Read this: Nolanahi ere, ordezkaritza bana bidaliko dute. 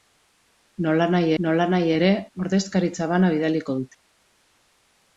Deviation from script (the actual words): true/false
true